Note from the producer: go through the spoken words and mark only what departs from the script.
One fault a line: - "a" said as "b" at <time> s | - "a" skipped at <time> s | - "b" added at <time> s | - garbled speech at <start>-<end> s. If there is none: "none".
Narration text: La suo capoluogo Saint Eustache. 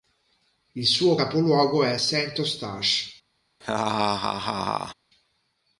- "La" said as "Il" at 0.7 s
- "è" added at 1.8 s